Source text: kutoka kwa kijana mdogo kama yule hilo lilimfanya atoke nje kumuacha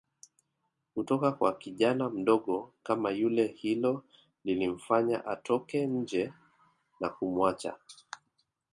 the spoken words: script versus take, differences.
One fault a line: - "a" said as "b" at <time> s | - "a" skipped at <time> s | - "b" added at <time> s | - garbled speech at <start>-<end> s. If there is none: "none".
- "na" added at 7.0 s